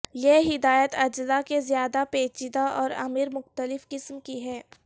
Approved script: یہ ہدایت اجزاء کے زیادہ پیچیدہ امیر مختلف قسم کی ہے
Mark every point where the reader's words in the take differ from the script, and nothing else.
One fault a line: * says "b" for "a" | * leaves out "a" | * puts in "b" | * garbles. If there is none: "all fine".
* puts in "اور"